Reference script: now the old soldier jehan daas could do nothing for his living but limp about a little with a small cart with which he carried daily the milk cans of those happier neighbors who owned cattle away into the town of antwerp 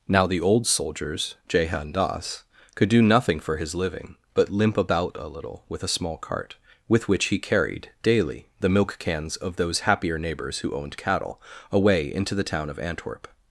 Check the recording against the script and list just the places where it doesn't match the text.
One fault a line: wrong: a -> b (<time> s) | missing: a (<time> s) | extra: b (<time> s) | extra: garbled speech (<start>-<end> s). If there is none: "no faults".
wrong: soldier -> soldiers (0.7 s)